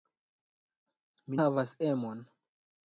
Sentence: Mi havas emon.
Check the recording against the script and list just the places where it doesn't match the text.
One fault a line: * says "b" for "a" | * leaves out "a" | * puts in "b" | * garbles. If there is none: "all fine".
all fine